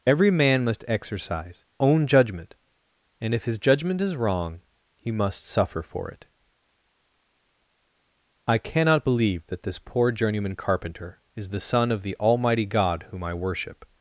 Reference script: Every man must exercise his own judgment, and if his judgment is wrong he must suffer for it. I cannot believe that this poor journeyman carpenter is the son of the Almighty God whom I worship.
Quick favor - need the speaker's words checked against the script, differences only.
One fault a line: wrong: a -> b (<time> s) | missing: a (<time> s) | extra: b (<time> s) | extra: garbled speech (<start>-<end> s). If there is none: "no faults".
missing: his (1.6 s)